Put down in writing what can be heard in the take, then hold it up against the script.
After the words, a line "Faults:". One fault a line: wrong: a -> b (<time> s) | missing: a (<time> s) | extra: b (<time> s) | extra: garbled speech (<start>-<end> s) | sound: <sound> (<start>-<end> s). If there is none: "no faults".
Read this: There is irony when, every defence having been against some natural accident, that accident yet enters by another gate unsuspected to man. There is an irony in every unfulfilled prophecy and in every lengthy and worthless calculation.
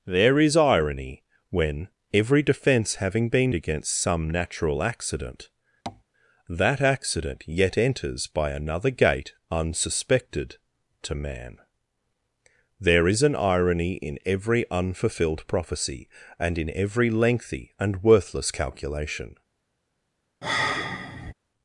There is irony when, every defence having been against some natural accident, that accident yet enters by another gate unsuspected to man. There is an irony in every unfulfilled prophecy and in every lengthy and worthless calculation.
Faults:
sound: tap (5.9-6.0 s)
sound: sigh (20.4-21.3 s)